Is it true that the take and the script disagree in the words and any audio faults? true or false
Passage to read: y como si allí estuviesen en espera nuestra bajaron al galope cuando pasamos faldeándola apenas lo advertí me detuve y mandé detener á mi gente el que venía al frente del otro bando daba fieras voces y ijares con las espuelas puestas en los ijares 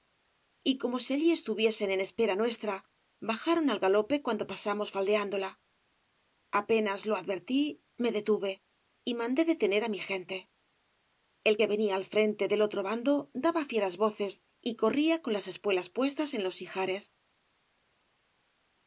true